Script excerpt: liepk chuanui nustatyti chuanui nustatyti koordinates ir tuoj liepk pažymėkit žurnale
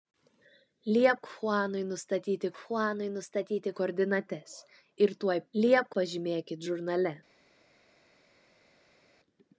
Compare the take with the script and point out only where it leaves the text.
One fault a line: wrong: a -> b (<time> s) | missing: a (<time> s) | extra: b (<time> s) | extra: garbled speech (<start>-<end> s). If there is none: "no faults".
no faults